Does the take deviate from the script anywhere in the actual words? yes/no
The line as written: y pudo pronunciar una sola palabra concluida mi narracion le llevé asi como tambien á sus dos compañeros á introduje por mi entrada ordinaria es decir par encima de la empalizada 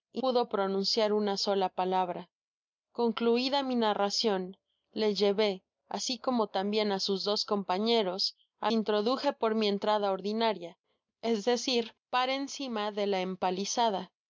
no